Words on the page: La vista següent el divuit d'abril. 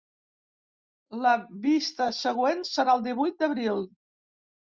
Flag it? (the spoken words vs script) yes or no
yes